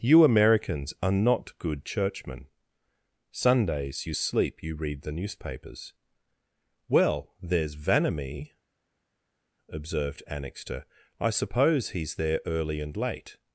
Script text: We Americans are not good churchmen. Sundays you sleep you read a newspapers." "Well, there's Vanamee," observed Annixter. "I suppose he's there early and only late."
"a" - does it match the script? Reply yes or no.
no